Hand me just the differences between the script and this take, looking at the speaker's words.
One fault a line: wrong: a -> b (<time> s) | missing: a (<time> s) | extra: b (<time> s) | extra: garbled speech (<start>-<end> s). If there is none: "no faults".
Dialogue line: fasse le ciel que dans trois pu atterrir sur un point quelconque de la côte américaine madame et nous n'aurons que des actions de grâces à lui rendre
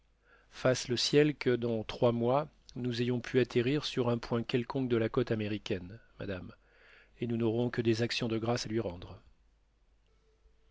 extra: mois nous ayons (2.1 s)